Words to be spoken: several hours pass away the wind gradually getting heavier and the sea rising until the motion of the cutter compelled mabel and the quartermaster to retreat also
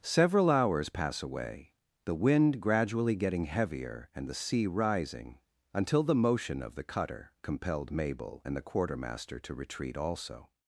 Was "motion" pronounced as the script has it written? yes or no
yes